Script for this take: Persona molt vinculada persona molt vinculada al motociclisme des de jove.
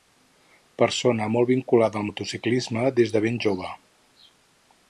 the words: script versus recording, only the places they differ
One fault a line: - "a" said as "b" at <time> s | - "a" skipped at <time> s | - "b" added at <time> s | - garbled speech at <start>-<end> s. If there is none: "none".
- "persona molt vinculada" skipped at 2.0 s
- "ben" added at 3.3 s